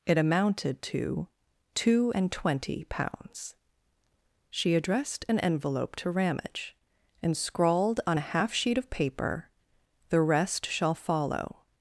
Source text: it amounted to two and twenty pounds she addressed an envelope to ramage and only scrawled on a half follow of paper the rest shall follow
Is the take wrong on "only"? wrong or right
wrong